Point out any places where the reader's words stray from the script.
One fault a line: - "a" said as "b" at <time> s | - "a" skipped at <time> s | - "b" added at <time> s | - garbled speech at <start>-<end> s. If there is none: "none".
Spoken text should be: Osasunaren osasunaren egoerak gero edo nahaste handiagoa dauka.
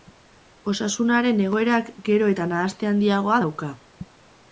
- "osasunaren" skipped at 1.4 s
- "edo" said as "eta" at 2.3 s